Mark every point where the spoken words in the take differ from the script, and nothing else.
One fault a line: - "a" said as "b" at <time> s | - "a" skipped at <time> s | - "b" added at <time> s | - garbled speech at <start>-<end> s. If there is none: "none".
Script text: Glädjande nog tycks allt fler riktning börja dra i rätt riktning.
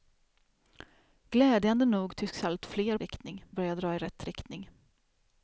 none